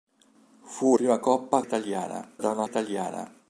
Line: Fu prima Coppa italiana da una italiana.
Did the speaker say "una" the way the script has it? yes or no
yes